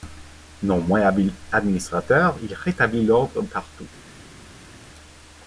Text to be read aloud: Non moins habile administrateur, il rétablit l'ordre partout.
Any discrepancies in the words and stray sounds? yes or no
no